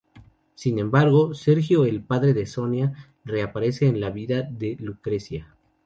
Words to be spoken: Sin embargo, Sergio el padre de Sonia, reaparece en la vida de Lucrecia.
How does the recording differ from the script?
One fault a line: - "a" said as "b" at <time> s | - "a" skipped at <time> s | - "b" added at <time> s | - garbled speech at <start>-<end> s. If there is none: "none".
none